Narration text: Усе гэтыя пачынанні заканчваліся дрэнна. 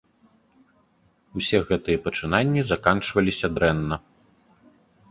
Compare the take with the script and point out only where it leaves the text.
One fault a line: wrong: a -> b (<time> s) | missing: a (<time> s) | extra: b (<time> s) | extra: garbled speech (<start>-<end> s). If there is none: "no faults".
no faults